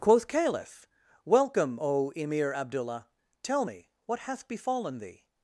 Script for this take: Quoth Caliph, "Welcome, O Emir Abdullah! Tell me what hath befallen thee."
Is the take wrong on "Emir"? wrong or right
right